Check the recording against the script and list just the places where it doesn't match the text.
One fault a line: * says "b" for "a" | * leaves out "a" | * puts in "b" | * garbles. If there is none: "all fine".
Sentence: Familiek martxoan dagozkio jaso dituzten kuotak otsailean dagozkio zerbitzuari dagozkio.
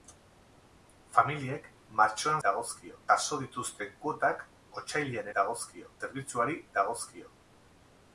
all fine